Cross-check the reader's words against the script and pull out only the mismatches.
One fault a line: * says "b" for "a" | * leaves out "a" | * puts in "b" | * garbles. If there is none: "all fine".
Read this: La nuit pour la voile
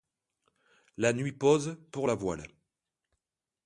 * puts in "pose"